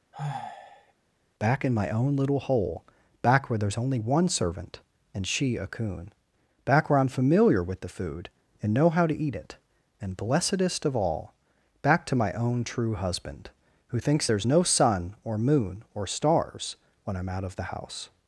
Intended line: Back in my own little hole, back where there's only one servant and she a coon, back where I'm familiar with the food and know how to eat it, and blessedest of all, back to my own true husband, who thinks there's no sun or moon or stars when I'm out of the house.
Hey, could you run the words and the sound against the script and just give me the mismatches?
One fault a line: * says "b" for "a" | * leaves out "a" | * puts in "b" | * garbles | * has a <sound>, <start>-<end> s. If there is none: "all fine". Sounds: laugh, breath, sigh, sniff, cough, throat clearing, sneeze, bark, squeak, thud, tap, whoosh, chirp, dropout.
* has a sigh, 0.1-0.9 s